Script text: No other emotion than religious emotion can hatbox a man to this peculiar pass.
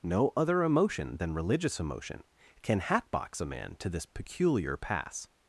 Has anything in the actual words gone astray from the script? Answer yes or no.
no